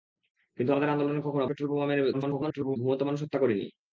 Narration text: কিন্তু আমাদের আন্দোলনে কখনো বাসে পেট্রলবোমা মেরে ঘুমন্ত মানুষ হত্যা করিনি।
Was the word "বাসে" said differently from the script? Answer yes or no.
yes